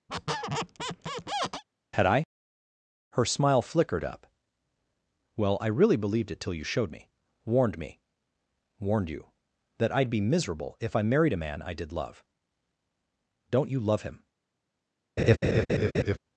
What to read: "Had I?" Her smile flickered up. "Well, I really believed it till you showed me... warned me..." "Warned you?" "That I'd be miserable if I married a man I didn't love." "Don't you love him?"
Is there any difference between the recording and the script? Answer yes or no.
yes